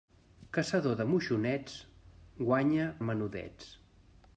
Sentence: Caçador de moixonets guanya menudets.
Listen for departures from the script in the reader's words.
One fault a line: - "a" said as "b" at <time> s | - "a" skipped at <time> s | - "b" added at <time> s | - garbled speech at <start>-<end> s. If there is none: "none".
none